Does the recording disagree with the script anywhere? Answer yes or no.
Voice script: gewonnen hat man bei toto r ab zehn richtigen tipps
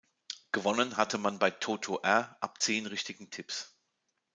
yes